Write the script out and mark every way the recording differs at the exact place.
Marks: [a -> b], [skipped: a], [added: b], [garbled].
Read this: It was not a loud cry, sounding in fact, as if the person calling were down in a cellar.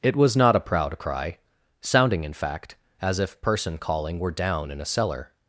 It was not a [loud -> proud] cry, sounding in fact, as if [skipped: the] person calling were down in a cellar.